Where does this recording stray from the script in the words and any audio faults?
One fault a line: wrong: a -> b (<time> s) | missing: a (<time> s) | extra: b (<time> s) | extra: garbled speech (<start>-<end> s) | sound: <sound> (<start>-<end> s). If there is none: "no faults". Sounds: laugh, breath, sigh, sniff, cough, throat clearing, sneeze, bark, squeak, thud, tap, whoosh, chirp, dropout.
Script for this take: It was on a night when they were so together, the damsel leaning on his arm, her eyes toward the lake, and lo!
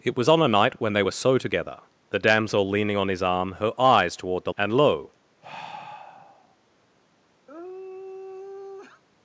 missing: lake (4.5 s)
sound: sigh (5.4-6.6 s)
sound: sigh (7.5-9.0 s)